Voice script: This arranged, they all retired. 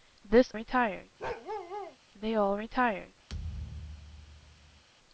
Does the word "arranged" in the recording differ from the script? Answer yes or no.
yes